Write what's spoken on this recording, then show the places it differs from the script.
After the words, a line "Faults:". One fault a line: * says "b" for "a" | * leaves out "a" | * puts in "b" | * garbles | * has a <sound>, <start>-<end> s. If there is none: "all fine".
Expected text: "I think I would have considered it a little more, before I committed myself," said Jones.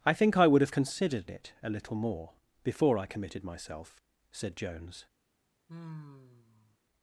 "I think I would have considered it a little more, before I committed myself," said Jones.
Faults:
* has a sigh, 5.7-6.8 s